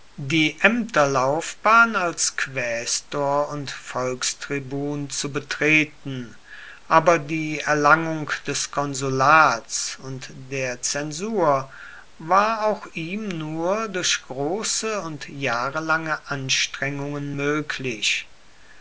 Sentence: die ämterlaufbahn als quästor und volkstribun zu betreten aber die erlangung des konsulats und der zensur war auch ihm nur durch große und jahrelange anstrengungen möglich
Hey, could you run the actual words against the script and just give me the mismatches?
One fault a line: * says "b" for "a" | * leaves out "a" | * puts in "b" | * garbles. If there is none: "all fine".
all fine